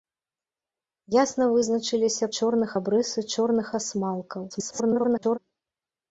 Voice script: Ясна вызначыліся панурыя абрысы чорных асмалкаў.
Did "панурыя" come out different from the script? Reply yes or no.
yes